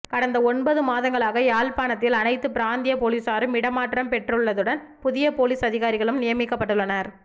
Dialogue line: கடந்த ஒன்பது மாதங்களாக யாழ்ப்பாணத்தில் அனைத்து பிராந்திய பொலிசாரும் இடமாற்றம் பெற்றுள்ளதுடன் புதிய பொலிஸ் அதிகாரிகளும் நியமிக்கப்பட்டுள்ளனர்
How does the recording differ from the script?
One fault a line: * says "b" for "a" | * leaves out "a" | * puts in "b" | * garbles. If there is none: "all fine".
all fine